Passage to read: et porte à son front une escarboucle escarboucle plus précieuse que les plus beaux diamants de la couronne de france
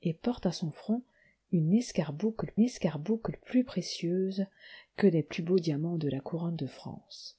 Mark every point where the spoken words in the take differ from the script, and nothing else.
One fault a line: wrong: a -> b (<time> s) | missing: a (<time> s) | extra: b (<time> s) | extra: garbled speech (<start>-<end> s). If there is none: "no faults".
no faults